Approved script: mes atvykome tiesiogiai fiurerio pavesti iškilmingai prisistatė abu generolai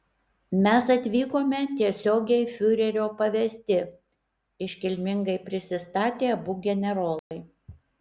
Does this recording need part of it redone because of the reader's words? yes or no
no